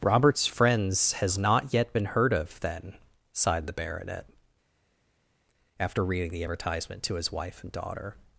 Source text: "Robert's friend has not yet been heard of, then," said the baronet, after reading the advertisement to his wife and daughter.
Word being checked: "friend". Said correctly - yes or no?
no